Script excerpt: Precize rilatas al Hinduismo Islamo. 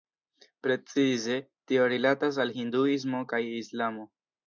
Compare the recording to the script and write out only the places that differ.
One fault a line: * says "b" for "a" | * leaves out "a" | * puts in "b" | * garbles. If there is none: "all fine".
* puts in "tio"
* puts in "kaj"